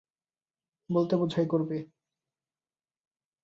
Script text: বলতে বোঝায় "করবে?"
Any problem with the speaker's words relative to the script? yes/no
no